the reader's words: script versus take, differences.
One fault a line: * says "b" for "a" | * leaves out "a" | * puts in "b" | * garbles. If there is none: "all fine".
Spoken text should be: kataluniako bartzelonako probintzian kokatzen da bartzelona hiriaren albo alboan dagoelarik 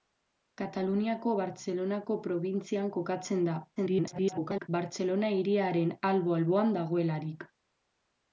* garbles